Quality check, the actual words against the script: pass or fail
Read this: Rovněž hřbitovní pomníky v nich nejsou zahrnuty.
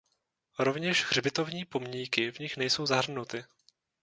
pass